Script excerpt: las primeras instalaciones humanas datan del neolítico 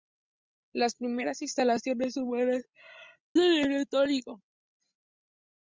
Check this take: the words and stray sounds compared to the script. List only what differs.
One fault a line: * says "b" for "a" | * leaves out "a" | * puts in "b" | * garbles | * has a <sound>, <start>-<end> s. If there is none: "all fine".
* leaves out "datan"